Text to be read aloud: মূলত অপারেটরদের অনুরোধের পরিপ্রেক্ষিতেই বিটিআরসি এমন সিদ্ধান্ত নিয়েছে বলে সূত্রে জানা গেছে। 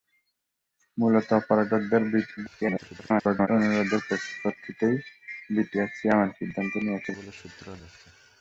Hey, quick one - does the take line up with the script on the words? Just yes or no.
no